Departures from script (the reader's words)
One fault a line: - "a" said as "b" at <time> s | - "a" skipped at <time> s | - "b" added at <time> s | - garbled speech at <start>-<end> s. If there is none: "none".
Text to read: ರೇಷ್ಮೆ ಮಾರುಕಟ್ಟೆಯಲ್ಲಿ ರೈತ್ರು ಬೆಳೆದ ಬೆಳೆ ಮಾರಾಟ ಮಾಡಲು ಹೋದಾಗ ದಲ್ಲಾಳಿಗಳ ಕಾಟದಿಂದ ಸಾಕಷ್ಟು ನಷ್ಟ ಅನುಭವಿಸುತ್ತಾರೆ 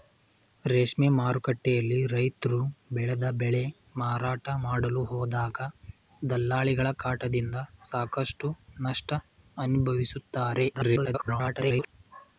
- garbled speech at 10.7-11.9 s